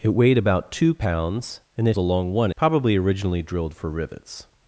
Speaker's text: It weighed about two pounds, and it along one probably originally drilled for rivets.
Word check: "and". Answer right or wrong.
right